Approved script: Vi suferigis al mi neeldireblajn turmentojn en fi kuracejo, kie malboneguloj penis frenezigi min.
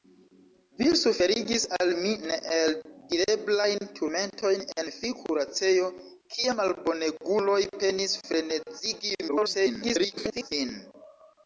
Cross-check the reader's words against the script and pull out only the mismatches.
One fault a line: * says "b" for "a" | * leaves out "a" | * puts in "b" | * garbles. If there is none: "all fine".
* garbles